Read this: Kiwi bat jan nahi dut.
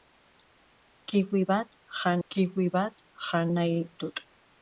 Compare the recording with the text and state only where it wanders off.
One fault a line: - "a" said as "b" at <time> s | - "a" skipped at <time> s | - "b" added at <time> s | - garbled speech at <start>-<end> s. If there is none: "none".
- "kiwi bat jan" added at 2.3 s